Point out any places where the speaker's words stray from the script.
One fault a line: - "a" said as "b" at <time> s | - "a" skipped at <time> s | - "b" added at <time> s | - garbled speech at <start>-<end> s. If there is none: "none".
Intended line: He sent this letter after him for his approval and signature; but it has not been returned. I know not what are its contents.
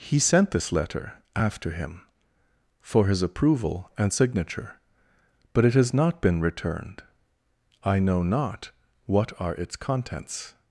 none